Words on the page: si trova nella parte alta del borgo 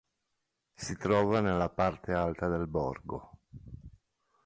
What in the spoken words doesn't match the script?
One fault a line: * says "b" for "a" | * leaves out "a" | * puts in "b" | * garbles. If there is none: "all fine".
all fine